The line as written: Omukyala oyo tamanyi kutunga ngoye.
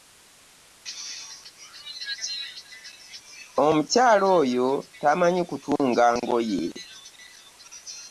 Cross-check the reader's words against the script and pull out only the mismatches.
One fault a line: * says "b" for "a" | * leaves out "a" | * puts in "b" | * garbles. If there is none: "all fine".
all fine